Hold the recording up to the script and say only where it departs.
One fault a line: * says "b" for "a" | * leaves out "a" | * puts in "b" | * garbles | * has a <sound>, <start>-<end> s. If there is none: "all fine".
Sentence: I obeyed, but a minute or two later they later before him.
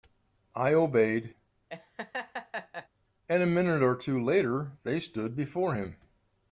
* has a laugh, 1.7-2.9 s
* says "and" for "but"
* says "stood" for "later"